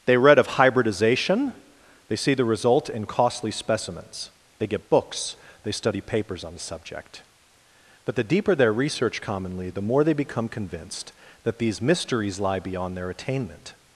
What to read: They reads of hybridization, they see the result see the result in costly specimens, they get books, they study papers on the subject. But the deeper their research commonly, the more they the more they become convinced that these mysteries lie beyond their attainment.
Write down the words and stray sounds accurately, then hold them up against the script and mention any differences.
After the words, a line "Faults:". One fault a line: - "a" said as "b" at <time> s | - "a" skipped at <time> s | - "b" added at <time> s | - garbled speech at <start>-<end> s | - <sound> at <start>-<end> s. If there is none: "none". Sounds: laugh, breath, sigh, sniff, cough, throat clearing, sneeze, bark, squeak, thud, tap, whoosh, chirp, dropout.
They read of hybridization, they see the result in costly specimens, they get books, they study papers on the subject. But the deeper their research commonly, the more they become convinced that these mysteries lie beyond their attainment.
Faults:
- "reads" said as "read" at 0.2 s
- "see the result" skipped at 2.9 s
- "the more they" skipped at 10.1 s